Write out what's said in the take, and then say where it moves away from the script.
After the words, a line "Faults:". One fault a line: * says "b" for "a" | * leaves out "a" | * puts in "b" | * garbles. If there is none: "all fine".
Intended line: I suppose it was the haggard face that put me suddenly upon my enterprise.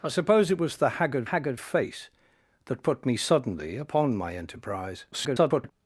I suppose it was the haggard haggard face that put me suddenly upon my enterprise. [garbled]
Faults:
* puts in "haggard"
* garbles